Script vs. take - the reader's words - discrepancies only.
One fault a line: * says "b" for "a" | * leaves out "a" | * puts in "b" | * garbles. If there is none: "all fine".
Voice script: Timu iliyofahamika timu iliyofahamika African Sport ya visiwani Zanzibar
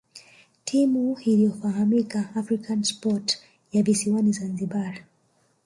* leaves out "timu iliyofahamika"